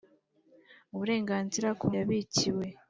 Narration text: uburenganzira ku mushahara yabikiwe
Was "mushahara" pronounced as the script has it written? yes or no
no